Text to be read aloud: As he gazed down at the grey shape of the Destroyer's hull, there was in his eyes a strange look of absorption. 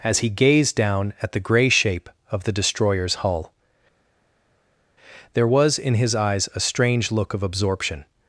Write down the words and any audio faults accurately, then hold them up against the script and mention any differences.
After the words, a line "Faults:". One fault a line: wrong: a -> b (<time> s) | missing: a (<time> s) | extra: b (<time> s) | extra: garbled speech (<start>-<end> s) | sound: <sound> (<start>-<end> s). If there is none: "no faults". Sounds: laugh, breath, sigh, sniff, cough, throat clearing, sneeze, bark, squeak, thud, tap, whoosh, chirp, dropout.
As he gazed down at the grey shape of the Destroyer's hull, there was in his eyes a strange look of absorption.
Faults:
no faults